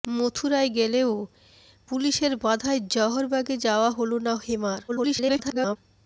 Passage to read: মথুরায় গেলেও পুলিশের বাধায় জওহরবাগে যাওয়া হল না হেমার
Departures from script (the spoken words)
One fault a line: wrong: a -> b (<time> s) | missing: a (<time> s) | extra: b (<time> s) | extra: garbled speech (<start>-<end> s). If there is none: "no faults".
extra: garbled speech (4.9-5.8 s)